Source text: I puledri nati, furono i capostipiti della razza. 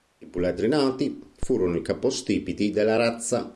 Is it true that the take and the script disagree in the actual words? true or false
false